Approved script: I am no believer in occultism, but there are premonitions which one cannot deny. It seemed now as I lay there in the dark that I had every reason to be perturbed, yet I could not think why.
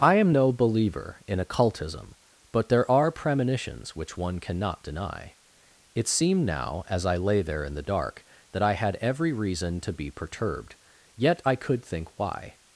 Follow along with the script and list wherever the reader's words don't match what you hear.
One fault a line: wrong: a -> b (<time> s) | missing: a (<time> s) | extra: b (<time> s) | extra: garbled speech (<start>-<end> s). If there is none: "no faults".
missing: not (11.8 s)